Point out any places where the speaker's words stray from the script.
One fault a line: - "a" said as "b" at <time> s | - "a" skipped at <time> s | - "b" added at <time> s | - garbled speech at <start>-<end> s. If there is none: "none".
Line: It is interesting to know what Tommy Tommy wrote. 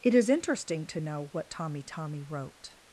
none